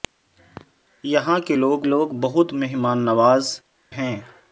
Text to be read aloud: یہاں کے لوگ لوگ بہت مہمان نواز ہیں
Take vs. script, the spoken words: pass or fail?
pass